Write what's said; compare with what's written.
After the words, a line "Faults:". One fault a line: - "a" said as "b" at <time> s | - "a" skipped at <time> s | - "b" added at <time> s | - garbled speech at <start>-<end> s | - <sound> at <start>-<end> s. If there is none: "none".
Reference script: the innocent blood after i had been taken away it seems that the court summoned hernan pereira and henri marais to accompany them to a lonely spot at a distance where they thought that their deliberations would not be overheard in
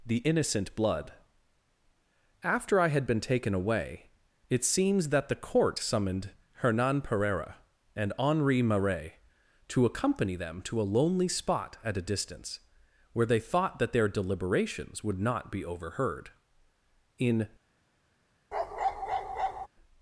the innocent blood after i had been taken away it seems that the court summoned hernan pereira and henri marais to accompany them to a lonely spot at a distance where they thought that their deliberations would not be overheard in
Faults:
- bark at 18.5-19.7 s